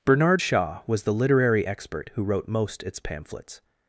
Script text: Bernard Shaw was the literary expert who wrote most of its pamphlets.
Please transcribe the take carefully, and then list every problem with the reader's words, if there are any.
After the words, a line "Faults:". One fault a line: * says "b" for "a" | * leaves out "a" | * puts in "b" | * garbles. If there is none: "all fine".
Bernard Shaw was the literary expert who wrote most its pamphlets.
Faults:
* leaves out "of"